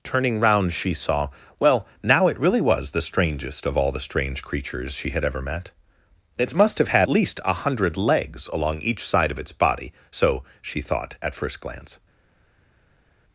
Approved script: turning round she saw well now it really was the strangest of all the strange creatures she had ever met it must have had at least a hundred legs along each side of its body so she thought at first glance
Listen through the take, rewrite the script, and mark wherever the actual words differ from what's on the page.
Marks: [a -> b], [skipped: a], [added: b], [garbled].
turning round she saw well now it really was the strangest of all the strange creatures she had ever met it must have had [skipped: at] least a hundred legs along each side of its body so she thought at first glance